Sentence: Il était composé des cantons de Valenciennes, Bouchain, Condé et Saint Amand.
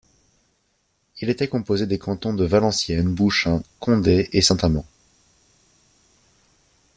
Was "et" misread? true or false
false